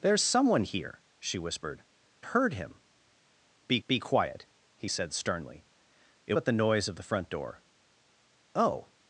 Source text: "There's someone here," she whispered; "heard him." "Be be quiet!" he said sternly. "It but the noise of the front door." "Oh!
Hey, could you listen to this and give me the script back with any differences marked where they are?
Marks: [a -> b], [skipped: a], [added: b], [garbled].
"There's someone here," she whispered; "heard him." "Be be quiet!" he said sternly. "It but the noise of the front door." "Oh!